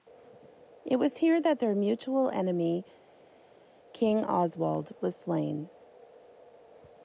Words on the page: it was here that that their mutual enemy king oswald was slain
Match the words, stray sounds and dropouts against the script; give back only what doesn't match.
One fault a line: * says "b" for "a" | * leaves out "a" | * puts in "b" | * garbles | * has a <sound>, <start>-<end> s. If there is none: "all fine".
* leaves out "that"